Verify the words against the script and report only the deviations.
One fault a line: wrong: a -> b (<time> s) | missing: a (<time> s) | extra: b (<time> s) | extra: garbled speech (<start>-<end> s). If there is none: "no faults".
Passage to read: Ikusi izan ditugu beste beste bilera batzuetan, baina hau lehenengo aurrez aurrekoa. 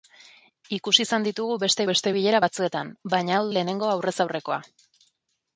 no faults